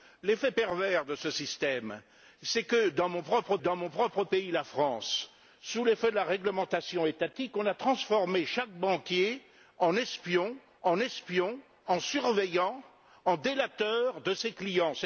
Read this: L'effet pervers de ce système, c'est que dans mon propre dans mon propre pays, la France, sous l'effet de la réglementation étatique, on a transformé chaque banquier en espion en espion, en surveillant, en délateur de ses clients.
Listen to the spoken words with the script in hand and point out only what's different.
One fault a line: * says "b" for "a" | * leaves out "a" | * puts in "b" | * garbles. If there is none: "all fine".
all fine